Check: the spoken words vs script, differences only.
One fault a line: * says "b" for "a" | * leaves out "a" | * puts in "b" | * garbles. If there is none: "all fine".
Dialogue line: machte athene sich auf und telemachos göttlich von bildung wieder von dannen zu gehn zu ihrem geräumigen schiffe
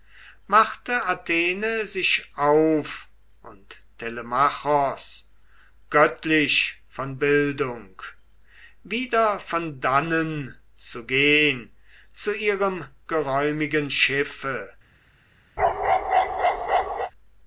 all fine